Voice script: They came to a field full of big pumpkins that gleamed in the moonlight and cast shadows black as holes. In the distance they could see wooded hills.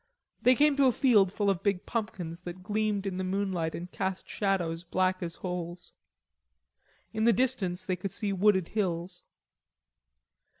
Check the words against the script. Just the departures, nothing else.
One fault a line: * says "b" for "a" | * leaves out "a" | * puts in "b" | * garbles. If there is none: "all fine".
all fine